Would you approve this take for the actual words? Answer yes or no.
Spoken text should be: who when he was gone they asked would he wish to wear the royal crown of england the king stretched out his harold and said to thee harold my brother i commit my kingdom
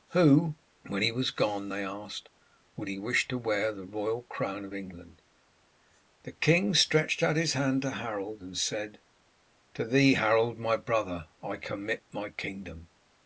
no